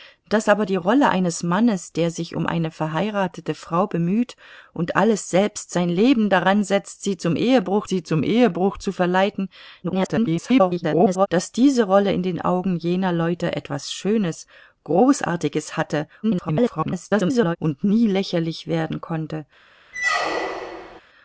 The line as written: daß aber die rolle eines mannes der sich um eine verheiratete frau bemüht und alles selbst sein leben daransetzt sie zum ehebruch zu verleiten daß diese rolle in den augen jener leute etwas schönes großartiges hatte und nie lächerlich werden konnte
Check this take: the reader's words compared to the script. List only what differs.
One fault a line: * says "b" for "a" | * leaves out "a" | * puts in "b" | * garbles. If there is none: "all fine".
* puts in "sie zum ehebruch"
* garbles
* garbles